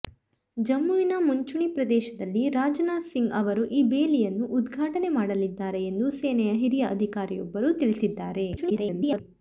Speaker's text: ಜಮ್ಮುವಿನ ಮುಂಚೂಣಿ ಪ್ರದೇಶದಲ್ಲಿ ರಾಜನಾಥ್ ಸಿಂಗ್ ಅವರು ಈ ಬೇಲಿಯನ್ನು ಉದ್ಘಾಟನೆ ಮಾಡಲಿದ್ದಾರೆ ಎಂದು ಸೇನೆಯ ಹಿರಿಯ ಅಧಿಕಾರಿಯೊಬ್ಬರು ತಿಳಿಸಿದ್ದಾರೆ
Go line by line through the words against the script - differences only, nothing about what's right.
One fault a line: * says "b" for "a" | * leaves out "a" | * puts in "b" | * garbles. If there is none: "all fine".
* garbles